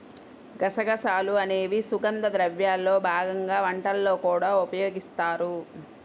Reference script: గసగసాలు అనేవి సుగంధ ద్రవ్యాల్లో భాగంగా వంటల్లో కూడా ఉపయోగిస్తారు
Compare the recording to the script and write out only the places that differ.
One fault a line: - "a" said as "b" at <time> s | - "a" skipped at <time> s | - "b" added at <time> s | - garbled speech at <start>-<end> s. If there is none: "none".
none